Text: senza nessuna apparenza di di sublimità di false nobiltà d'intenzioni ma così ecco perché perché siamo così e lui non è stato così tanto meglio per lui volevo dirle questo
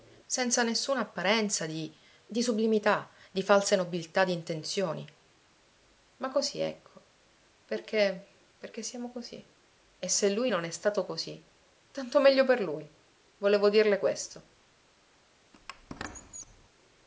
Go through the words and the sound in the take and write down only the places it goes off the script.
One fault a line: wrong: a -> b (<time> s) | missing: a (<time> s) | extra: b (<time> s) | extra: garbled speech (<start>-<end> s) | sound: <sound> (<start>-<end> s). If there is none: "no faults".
extra: se (10.1 s)
sound: squeak (15.5-16.7 s)